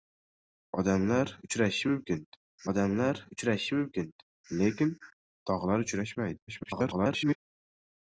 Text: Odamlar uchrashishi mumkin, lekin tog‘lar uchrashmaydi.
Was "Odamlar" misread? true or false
false